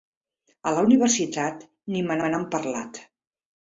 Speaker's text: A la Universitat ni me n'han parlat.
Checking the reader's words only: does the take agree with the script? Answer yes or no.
no